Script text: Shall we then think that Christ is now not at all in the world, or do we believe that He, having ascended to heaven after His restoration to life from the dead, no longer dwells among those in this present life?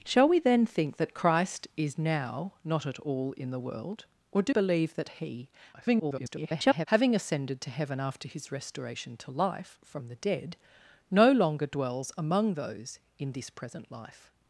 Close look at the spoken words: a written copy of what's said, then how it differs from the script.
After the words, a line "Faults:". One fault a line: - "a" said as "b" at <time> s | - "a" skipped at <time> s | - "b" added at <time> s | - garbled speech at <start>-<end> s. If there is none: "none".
Shall we then think that Christ is now not at all in the world, or do believe that He, [garbled] having ascended to heaven after His restoration to life from the dead, no longer dwells among those in this present life?
Faults:
- "we" skipped at 4.5 s
- garbled speech at 5.7-6.9 s